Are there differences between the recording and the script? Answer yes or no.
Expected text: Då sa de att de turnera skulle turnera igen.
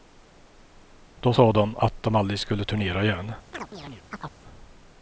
yes